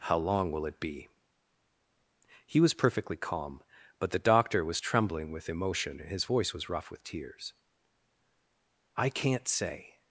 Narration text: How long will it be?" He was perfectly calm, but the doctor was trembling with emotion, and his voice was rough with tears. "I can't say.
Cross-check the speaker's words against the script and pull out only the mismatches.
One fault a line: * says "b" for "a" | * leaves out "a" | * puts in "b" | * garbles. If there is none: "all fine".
all fine